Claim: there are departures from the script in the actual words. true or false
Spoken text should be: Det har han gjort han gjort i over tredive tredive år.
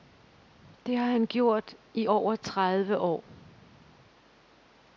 true